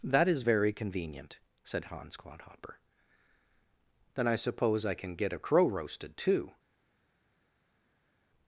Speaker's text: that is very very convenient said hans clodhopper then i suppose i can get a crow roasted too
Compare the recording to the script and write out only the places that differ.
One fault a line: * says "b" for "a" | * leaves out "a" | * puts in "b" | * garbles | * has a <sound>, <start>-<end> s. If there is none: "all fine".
* leaves out "very"